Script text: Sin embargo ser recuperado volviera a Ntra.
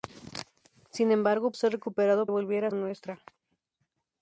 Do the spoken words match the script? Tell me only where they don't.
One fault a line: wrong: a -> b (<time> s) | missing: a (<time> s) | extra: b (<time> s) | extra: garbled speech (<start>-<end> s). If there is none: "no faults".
no faults